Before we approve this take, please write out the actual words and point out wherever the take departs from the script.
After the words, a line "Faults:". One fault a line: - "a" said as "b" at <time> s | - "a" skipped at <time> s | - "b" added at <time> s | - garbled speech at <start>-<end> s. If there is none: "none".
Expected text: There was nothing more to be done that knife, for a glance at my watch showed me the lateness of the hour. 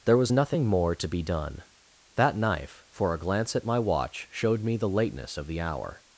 There was nothing more to be done that knife, for a glance at my watch showed me the lateness of the hour.
Faults:
none